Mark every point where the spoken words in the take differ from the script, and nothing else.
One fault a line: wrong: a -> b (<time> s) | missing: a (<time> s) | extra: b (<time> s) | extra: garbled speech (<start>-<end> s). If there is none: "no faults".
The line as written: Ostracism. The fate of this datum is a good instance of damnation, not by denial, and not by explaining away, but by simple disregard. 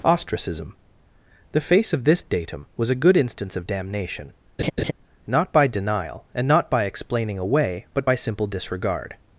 wrong: fate -> face (1.6 s)
wrong: is -> was (2.8 s)